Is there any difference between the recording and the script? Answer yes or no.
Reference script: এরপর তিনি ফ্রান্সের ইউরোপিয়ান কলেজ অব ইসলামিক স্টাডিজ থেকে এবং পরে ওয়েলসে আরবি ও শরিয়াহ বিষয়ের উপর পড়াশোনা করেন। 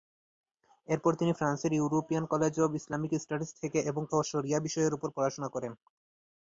yes